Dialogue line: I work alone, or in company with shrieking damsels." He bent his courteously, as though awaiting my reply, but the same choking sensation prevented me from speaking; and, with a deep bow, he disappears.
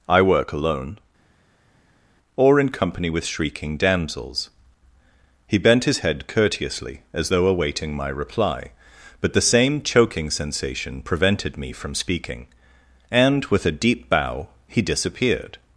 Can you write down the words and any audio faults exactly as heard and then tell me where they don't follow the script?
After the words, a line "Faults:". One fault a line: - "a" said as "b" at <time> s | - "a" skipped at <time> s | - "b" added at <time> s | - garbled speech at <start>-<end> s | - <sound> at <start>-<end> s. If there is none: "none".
I work alone, or in company with shrieking damsels." He bent his head courteously, as though awaiting my reply, but the same choking sensation prevented me from speaking; and, with a deep bow, he disappeared.
Faults:
- "head" added at 6.0 s
- "disappears" said as "disappeared" at 14.8 s